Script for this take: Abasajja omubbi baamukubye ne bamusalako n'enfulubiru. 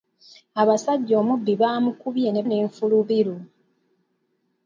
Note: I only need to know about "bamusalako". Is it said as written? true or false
false